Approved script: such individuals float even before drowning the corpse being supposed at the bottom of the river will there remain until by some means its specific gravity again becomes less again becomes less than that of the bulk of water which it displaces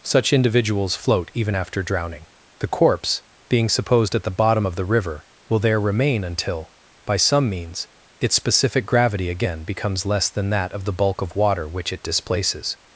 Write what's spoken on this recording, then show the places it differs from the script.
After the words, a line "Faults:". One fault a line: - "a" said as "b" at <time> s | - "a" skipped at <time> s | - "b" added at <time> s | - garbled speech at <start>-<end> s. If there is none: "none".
such individuals float even after drowning the corpse being supposed at the bottom of the river will there remain until by some means its specific gravity again becomes less than that of the bulk of water which it displaces
Faults:
- "before" said as "after" at 1.5 s
- "again becomes less" skipped at 10.3 s